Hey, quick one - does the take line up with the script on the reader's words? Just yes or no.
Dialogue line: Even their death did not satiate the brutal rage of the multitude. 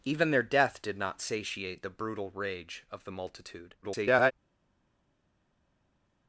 no